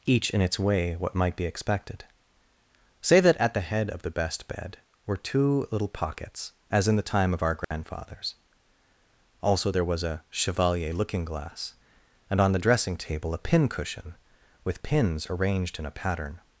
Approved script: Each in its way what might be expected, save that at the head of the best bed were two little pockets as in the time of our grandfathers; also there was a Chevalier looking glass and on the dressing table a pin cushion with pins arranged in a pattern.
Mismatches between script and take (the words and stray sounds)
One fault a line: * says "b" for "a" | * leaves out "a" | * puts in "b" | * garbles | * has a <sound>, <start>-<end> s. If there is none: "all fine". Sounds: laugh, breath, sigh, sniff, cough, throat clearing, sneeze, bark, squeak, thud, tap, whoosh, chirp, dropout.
* says "say" for "save"
* has a dropout, 7.6-7.7 s